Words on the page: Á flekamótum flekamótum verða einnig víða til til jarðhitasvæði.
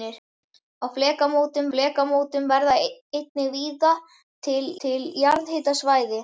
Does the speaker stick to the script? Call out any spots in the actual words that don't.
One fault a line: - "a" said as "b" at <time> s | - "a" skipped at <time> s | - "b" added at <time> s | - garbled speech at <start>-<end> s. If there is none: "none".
none